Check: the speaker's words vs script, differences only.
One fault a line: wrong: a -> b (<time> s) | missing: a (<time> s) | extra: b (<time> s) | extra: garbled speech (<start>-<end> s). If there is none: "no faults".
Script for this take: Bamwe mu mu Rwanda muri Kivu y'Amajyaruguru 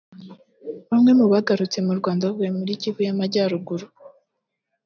extra: bagarutse (1.3 s)
extra: bavuye (2.3 s)